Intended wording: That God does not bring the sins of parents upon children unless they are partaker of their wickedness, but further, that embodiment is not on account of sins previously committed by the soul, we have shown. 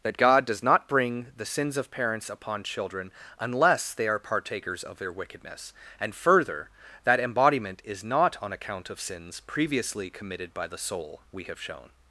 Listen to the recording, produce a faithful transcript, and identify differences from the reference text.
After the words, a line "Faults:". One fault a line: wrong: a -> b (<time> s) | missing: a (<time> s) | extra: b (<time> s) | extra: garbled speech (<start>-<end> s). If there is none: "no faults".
That God does not bring the sins of parents upon children unless they are partakers of their wickedness, and further, that embodiment is not on account of sins previously committed by the soul, we have shown.
Faults:
wrong: partaker -> partakers (4.2 s)
wrong: but -> and (6.0 s)